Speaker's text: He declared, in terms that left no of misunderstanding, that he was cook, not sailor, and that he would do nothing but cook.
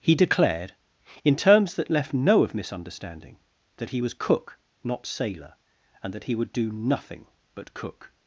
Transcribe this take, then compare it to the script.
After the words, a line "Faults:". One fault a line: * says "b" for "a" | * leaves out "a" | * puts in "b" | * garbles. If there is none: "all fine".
He declared, in terms that left no of misunderstanding, that he was cook, not sailor, and that he would do nothing but cook.
Faults:
all fine